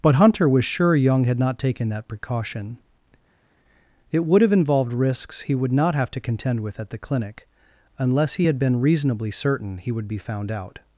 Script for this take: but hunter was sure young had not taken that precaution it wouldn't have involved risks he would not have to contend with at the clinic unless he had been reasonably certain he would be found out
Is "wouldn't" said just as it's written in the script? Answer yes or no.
no